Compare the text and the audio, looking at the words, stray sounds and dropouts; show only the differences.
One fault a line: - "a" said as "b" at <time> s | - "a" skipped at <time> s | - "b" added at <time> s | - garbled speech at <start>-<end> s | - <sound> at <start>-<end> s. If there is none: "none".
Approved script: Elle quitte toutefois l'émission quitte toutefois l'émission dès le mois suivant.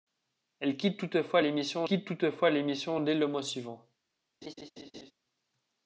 - laugh at 4.4-5.1 s